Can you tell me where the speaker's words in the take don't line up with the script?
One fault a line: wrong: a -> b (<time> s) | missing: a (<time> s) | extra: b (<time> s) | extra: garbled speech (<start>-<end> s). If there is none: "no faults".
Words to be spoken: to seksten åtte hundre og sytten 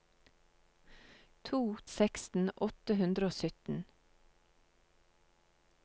no faults